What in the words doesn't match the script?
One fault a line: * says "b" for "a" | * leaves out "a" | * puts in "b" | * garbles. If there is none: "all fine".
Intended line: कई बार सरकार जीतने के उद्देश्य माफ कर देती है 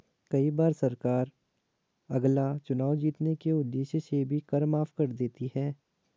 * puts in "अगला चुनाव"
* puts in "से भी कर"